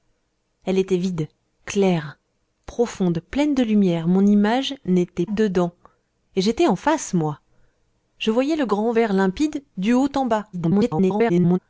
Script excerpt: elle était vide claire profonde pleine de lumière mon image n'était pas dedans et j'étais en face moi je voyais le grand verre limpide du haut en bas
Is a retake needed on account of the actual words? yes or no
yes